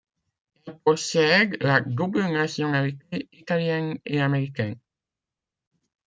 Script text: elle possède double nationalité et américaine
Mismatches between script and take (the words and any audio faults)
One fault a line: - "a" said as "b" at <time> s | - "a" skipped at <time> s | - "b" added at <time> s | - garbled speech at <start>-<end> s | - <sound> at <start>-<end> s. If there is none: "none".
- "la" added at 1.6 s
- "italienne" added at 3.3 s